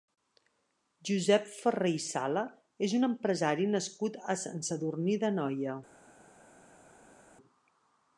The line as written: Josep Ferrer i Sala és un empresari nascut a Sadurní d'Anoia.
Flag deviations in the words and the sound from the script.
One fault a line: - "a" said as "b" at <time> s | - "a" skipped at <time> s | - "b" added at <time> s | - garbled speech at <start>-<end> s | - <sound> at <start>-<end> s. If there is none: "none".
- "Sant" added at 4.5 s